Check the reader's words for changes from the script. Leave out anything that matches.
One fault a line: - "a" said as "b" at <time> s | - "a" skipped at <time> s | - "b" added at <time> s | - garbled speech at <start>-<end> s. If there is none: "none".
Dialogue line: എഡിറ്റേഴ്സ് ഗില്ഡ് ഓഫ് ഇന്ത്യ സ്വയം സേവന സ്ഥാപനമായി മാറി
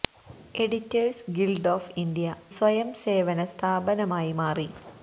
none